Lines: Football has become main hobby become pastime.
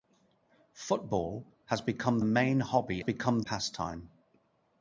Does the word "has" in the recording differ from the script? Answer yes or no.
no